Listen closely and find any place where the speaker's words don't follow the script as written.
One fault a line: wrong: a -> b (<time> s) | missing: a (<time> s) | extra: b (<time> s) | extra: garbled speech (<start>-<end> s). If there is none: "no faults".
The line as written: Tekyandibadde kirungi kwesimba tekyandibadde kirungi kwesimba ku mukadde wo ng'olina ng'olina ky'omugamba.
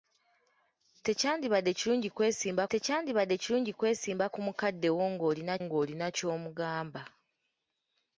no faults